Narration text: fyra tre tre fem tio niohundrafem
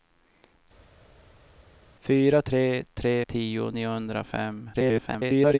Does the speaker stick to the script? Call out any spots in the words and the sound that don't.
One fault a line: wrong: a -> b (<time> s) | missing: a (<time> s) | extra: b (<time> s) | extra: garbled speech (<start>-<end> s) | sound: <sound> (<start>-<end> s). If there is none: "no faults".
missing: fem (3.1 s)
extra: garbled speech (4.7-5.6 s)